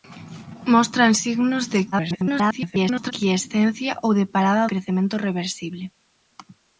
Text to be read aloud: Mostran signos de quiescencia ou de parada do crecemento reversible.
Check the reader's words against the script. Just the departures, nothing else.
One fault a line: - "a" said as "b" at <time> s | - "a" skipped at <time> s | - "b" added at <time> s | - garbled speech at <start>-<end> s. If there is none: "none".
- garbled speech at 1.9-3.1 s
- "do" skipped at 4.7 s